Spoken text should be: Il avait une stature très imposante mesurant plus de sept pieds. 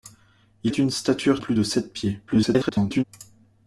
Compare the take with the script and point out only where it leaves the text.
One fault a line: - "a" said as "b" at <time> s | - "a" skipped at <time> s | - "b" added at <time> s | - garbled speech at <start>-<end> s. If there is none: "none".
- "avait" skipped at 0.7 s
- "très imposante mesurant" skipped at 1.4 s
- garbled speech at 2.3-3.0 s